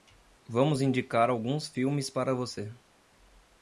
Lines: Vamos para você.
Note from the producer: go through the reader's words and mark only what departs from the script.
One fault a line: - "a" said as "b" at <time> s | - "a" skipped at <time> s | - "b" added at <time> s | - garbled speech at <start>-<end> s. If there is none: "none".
- "indicar alguns filmes" added at 0.8 s